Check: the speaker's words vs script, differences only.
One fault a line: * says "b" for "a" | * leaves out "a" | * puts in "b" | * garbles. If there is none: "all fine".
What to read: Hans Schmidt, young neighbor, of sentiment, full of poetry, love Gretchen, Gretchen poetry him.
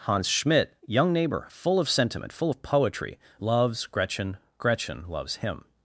* puts in "full"
* says "loves" for "love"
* says "loves" for "poetry"